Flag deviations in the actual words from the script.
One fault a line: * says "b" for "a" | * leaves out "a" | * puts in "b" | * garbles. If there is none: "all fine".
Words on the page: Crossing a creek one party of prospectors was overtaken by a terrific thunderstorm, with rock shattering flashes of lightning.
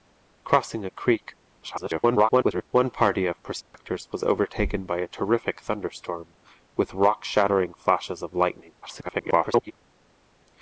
* garbles
* garbles